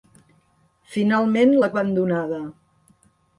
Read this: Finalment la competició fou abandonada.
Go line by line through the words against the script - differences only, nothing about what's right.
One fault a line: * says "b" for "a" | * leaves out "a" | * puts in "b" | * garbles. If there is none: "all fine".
* leaves out "competició fou"